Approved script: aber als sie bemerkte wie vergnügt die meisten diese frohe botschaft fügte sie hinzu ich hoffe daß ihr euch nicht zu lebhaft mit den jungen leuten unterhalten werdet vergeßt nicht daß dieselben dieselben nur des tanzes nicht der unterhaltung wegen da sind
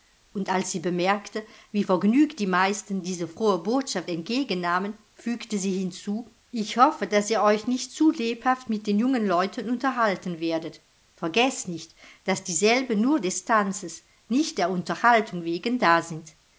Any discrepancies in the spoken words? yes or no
yes